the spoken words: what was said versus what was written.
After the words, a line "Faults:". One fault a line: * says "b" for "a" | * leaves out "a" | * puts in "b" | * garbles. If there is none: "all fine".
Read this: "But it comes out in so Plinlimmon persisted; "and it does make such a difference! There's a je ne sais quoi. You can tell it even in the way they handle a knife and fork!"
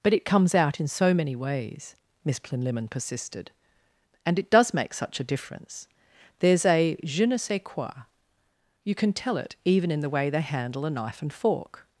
"But it comes out in so many ways," Miss Plinlimmon persisted; "and it does make such a difference! There's a je ne sais quoi. You can tell it even in the way they handle a knife and fork!"
Faults:
* puts in "many ways Miss"